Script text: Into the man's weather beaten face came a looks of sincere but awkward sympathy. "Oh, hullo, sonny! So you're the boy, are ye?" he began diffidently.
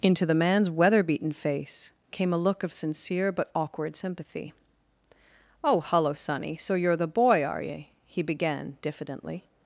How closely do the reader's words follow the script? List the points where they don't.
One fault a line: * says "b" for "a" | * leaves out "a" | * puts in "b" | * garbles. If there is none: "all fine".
* says "look" for "looks"